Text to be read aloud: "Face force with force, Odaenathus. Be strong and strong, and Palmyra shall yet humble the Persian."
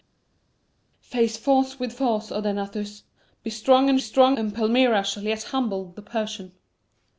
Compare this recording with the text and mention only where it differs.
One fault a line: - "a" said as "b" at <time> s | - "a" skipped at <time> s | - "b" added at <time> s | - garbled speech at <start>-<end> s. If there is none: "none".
none